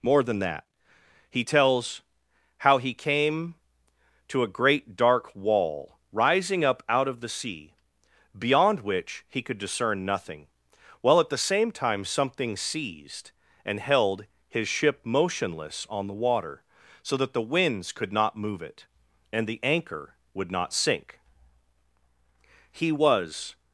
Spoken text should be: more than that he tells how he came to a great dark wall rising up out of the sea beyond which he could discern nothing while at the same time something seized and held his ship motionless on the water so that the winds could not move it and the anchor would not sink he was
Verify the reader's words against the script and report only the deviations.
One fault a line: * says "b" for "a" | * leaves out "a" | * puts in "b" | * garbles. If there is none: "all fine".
all fine